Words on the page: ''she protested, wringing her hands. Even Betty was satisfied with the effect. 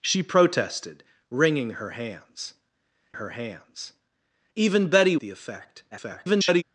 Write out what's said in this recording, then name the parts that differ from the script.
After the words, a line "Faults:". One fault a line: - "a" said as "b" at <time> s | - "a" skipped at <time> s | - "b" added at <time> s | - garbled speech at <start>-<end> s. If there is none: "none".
''she protested, wringing her hands her hands. Even Betty the effect. [garbled]
Faults:
- "her hands" added at 3.1 s
- "was satisfied with" skipped at 5.2 s
- garbled speech at 5.9-6.6 s